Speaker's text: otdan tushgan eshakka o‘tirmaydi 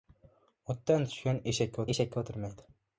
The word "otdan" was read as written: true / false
true